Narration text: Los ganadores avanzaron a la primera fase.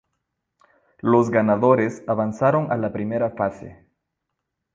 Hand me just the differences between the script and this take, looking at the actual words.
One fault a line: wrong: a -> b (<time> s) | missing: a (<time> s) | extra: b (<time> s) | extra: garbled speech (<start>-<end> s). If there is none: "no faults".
no faults